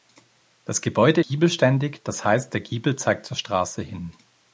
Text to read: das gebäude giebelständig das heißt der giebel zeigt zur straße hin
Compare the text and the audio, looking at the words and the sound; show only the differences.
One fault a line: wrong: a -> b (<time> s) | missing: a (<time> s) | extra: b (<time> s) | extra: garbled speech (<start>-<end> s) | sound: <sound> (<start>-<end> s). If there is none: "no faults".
no faults